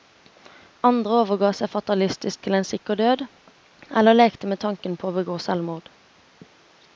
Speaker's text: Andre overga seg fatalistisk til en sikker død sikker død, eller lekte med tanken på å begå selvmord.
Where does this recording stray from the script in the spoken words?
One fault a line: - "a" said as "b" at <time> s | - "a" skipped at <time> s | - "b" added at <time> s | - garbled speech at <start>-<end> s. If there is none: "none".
- "sikker død" skipped at 3.2 s